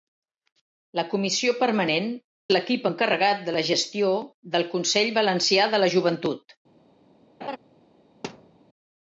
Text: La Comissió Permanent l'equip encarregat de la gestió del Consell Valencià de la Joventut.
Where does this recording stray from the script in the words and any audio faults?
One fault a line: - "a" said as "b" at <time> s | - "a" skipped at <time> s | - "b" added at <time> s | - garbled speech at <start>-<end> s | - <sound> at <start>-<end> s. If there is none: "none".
- laugh at 7.4-7.6 s
- thud at 8.2-8.6 s